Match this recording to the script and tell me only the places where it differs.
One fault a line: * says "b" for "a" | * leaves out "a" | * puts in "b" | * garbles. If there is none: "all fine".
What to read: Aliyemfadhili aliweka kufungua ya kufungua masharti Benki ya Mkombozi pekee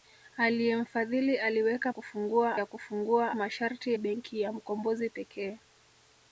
all fine